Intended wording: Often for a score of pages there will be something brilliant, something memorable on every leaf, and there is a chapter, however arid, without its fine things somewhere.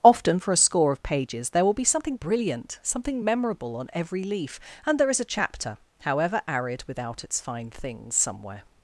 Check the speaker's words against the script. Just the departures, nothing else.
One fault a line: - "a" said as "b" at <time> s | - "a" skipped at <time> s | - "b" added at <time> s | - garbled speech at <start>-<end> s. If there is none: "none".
none